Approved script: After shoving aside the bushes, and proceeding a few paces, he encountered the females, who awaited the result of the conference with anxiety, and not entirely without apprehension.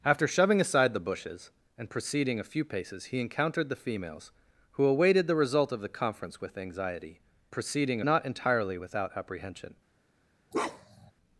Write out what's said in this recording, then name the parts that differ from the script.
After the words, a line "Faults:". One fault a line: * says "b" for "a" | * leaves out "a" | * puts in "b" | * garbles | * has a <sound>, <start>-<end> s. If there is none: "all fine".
After shoving aside the bushes, and proceeding a few paces, he encountered the females, who awaited the result of the conference with anxiety, proceeding not entirely without apprehension.
Faults:
* says "proceeding" for "and"
* has a bark, 10.5-11.1 s